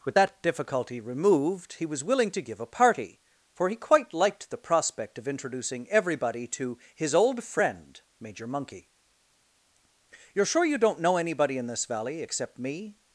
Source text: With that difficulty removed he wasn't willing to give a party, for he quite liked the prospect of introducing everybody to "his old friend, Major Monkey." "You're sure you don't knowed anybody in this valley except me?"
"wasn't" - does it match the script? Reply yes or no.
no